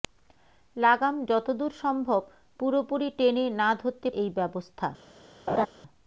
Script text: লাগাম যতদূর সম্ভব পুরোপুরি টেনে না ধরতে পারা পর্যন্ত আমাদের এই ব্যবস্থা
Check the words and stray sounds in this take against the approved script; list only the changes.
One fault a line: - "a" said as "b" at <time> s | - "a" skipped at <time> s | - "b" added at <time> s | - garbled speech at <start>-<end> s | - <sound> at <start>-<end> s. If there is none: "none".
- "পারা পর্যন্ত আমাদের" skipped at 4.1 s
- laugh at 5.5-5.7 s